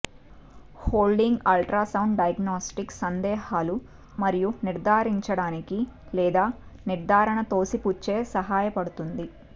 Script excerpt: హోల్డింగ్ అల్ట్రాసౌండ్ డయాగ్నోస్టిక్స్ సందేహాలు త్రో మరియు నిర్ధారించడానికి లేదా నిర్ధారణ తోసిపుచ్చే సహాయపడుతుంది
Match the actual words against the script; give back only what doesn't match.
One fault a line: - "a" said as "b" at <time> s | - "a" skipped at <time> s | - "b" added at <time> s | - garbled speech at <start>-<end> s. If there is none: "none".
- "త్రో" skipped at 3.8 s